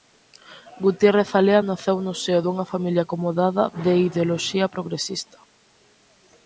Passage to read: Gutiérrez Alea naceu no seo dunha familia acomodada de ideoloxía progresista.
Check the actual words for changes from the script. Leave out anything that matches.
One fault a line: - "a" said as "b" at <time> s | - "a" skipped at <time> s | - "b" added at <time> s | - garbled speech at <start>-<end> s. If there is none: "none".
none